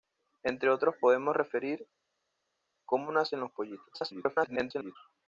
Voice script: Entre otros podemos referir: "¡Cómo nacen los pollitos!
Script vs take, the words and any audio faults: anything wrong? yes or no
yes